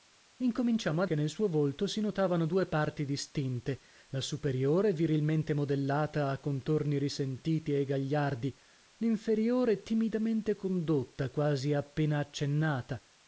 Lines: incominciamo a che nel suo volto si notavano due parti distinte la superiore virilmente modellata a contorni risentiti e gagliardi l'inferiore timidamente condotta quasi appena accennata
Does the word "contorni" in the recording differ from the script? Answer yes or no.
no